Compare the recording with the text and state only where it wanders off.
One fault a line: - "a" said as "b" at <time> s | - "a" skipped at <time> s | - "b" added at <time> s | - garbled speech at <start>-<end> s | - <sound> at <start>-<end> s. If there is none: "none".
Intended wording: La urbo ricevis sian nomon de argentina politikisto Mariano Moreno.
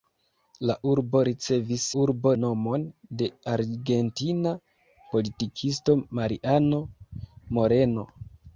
- "sian" said as "urbo" at 2.0 s